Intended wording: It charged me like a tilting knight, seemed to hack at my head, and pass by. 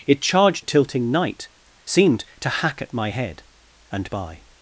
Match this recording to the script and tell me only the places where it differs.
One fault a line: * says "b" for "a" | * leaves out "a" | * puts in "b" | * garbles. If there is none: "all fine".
* leaves out "me like"
* leaves out "pass"